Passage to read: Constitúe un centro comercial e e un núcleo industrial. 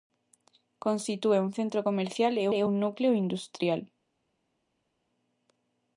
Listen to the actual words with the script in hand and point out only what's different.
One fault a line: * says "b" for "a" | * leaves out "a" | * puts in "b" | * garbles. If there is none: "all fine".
all fine